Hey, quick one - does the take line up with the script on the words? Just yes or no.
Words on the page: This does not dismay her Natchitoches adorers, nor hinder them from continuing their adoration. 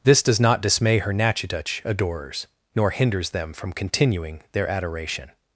no